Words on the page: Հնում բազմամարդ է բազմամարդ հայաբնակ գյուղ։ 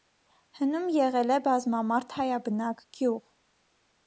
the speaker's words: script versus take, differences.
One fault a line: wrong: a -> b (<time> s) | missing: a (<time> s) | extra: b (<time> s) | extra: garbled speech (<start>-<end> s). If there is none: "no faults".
wrong: բազմամարդ -> եղել (0.9 s)